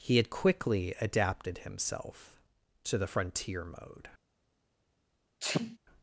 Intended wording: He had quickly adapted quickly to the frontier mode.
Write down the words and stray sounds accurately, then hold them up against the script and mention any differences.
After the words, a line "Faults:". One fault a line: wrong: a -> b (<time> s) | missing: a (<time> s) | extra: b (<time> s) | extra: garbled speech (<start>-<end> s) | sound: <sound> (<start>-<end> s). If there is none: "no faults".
He had quickly adapted himself to the frontier mode.
Faults:
wrong: quickly -> himself (1.6 s)
sound: sneeze (5.4-5.8 s)